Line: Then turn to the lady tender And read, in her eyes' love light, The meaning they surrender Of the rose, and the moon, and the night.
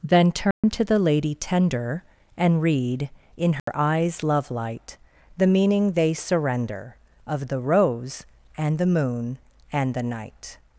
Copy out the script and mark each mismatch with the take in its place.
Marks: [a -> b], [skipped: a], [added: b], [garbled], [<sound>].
Then turn [dropout] to the lady tender And read, in her [dropout] eyes' love light, The meaning they surrender Of the rose, and the moon, and the night.